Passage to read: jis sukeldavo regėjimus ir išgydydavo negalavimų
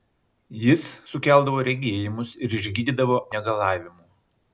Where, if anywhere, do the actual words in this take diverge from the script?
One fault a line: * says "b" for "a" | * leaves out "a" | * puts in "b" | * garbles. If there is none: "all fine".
all fine